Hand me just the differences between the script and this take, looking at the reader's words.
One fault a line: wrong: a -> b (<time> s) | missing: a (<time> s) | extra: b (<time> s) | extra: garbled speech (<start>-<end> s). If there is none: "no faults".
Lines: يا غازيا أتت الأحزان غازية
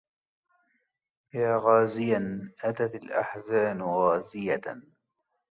no faults